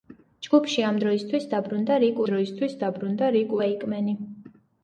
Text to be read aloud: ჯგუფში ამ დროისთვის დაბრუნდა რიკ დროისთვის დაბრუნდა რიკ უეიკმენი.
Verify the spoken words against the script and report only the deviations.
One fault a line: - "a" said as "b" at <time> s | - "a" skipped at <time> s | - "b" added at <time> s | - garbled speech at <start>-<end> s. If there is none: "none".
none